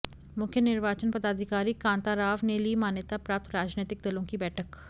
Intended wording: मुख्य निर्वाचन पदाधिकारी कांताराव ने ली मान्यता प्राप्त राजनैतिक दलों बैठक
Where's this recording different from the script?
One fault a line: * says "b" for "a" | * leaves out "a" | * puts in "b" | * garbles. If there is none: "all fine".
* puts in "की"